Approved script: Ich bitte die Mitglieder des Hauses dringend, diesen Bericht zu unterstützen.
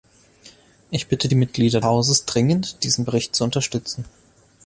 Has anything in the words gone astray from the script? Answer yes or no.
yes